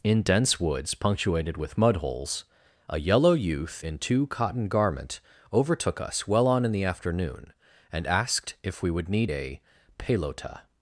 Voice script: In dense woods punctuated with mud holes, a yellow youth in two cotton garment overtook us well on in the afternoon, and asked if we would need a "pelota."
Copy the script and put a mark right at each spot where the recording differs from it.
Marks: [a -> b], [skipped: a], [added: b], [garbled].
In dense woods punctuated with mud holes, a yellow youth in two cotton garment overtook us well on in the afternoon, and asked if we would need a "pelota."